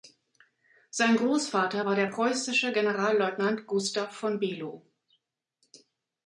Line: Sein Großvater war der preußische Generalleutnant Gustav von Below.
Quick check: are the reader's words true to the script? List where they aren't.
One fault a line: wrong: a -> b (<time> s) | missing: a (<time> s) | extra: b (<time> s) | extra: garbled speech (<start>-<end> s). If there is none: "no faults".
no faults